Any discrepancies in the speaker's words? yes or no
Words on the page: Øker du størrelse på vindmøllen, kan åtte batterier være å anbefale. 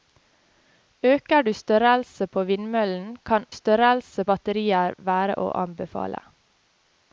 yes